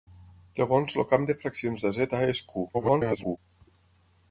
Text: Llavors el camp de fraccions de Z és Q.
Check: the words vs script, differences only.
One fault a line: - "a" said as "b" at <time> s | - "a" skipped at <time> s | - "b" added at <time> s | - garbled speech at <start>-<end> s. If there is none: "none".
- garbled speech at 2.7-3.4 s